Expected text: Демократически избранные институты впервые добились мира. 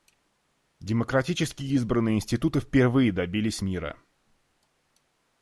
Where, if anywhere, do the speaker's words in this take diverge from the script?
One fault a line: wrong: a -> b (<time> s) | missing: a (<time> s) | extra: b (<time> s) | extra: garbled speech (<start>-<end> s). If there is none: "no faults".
no faults